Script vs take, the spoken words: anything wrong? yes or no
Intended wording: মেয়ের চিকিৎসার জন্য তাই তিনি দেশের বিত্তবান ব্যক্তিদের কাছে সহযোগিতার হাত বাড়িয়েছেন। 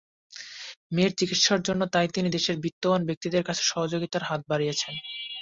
no